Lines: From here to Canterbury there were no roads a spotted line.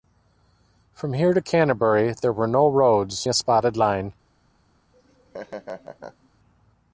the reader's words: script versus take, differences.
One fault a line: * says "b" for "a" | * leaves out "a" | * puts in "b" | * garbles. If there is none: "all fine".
all fine